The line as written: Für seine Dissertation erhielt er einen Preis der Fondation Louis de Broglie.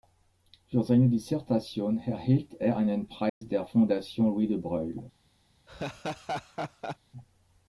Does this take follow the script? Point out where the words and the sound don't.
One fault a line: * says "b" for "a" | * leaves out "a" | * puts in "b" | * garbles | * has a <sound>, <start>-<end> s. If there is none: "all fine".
* has a dropout, 3.3-3.4 s
* has a laugh, 5.7-7.0 s